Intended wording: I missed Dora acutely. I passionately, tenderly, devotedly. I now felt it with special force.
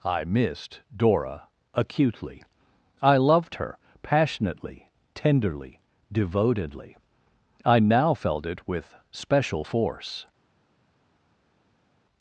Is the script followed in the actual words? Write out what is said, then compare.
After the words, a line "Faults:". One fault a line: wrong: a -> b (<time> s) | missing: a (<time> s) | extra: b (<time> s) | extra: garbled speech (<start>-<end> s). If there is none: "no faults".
I missed Dora acutely. I loved her passionately, tenderly, devotedly. I now felt it with special force.
Faults:
extra: loved her (3.2 s)